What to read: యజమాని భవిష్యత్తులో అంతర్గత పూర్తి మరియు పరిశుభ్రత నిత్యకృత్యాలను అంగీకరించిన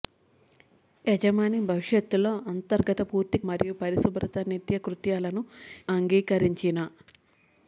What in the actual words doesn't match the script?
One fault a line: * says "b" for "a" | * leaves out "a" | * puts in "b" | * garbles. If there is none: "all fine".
all fine